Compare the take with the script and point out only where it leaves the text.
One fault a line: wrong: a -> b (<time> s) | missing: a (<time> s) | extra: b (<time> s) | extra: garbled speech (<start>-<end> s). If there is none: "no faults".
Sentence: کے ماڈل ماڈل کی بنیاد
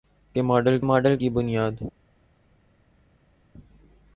no faults